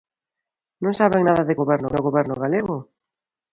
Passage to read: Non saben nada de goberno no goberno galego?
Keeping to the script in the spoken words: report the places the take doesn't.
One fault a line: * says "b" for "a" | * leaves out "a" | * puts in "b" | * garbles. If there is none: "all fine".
all fine